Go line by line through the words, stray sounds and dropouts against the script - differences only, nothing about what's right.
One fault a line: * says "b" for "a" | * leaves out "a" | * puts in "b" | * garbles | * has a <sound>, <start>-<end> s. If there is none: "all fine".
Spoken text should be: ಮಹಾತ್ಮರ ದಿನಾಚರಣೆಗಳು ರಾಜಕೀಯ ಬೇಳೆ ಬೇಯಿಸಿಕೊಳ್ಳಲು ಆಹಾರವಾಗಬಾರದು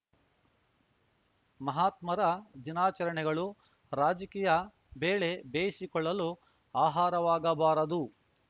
all fine